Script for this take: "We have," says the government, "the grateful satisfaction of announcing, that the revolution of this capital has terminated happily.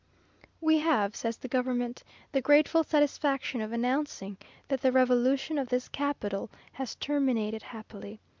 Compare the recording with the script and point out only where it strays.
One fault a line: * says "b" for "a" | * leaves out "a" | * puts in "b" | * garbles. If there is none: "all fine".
all fine